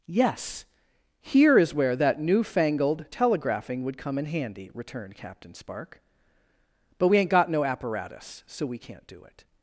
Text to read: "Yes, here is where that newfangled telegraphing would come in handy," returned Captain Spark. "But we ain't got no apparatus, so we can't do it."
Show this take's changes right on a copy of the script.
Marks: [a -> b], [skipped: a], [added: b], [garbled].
"Yes, here is where that newfangled telegraphing would come in handy," returned Captain Spark. "But we ain't got no apparatus, so we can't do it."